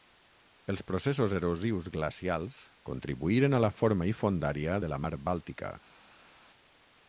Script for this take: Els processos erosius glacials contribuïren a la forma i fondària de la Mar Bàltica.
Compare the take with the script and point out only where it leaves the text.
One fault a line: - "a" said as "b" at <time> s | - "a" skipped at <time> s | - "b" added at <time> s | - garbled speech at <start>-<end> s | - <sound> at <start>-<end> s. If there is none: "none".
none